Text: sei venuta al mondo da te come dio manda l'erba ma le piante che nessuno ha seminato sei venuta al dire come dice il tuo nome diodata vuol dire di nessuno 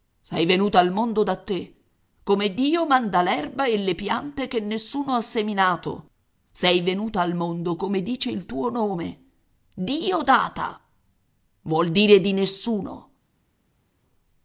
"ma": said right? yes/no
no